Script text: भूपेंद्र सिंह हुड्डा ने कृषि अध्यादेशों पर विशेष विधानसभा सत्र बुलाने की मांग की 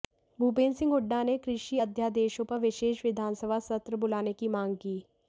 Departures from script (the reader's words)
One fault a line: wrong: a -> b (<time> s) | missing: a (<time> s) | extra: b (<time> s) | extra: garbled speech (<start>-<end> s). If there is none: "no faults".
no faults